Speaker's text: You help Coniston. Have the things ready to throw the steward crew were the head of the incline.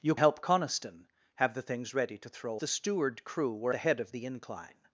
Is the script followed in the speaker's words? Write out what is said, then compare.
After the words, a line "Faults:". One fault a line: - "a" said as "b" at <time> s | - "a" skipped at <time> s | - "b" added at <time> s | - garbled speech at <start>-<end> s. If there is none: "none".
You help Coniston. Have the things ready to throw the steward crew were the head of the incline.
Faults:
none